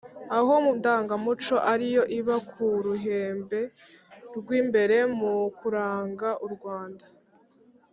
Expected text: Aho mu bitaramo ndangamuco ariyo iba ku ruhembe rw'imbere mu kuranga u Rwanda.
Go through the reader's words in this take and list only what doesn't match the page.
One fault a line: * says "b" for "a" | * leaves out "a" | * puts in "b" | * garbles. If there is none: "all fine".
* leaves out "bitaramo"